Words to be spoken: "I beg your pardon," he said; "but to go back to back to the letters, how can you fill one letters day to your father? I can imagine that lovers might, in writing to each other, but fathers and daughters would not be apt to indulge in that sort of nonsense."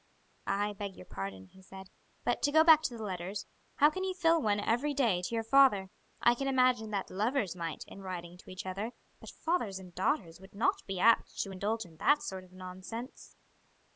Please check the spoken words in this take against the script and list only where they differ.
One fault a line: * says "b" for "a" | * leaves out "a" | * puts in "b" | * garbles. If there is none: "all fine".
* leaves out "back to"
* says "every" for "letters"